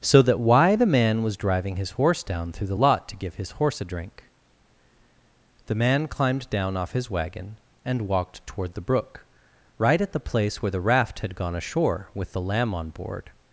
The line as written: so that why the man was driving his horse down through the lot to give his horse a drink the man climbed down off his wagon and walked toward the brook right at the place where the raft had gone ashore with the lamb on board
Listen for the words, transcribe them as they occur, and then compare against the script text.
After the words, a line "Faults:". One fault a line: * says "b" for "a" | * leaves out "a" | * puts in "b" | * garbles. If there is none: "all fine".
so that why the man was driving his horse down through the lot to give his horse a drink the man climbed down off his wagon and walked toward the brook right at the place where the raft had gone ashore with the lamb on board
Faults:
all fine